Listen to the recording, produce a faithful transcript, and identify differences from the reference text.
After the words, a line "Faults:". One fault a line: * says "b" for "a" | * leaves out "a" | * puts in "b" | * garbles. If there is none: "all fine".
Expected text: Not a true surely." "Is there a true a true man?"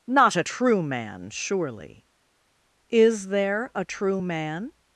Not a true man, surely." "Is there a true man?"
Faults:
* puts in "man"
* leaves out "a true"